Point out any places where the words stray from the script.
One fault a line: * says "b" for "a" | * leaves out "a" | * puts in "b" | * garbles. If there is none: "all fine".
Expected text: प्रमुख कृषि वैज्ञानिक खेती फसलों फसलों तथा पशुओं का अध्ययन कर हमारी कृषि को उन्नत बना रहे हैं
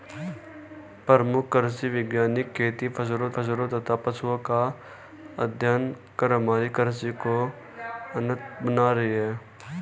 all fine